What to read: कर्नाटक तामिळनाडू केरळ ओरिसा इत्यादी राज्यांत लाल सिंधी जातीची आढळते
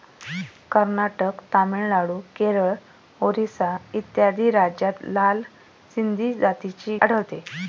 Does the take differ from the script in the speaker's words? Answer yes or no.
no